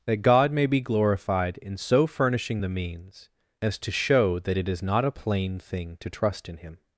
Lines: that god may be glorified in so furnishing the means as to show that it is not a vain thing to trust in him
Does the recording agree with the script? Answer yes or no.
no